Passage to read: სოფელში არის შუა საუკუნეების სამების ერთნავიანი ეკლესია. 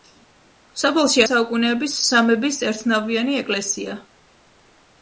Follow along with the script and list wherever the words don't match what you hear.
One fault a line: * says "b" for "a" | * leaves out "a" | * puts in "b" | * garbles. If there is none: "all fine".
* leaves out "არის შუა"